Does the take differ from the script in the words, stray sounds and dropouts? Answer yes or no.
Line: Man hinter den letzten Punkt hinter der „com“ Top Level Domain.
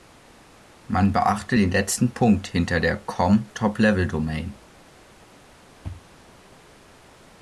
yes